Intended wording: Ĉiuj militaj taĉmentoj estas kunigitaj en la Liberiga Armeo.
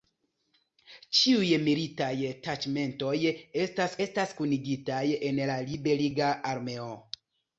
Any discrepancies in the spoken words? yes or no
yes